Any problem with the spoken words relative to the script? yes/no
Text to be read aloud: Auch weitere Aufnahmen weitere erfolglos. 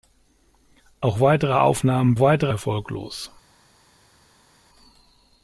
no